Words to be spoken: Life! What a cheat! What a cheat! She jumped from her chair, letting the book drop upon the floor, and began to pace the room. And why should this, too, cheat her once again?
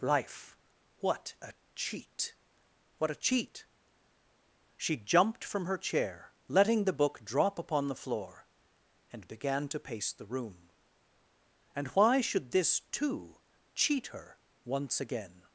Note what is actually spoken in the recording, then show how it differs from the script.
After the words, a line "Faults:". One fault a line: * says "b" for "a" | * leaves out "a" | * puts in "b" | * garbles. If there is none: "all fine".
Life! What a cheat! What a cheat! She jumped from her chair, letting the book drop upon the floor, and began to pace the room. And why should this, too, cheat her once again?
Faults:
all fine